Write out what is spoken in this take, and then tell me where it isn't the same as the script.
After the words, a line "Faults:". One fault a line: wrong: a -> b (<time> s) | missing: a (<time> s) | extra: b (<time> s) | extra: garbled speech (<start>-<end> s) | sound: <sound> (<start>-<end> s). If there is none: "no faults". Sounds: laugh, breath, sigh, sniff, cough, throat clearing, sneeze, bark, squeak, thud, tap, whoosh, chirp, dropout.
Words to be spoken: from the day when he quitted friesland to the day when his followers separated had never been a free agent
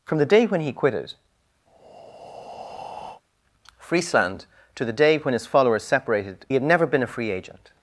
from the day when he quitted friesland to the day when his followers separated had never been a free agent
Faults:
sound: breath (1.7-3.2 s)